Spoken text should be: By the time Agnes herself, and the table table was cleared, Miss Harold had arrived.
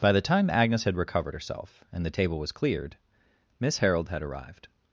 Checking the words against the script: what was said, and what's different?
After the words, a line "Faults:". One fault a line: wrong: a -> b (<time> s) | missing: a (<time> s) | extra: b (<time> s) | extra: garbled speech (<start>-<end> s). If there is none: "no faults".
By the time Agnes had recovered herself, and the table was cleared, Miss Harold had arrived.
Faults:
extra: had recovered (0.8 s)
missing: table (2.4 s)